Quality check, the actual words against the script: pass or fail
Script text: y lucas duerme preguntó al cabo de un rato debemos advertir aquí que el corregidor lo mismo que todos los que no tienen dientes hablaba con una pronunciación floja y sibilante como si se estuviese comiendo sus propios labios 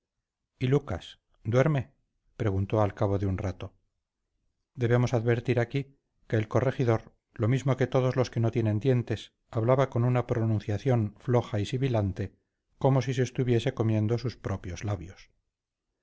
pass